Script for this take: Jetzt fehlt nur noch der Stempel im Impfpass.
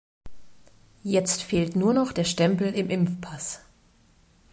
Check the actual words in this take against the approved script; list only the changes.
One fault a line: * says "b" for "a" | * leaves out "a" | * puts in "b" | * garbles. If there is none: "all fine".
all fine